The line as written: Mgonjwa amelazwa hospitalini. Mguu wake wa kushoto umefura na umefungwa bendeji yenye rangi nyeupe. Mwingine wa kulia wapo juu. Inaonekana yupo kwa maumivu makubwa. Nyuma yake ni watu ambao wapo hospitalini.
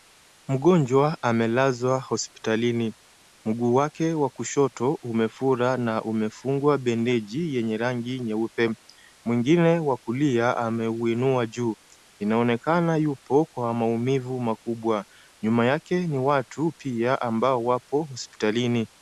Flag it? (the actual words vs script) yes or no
yes